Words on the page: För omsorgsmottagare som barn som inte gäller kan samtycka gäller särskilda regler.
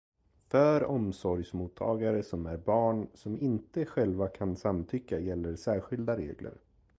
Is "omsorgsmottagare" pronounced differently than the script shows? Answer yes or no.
no